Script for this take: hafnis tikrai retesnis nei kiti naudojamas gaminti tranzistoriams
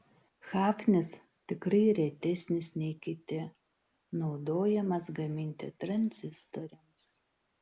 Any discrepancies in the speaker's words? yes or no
no